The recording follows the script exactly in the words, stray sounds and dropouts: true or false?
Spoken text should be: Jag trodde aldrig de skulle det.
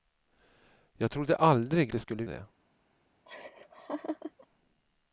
false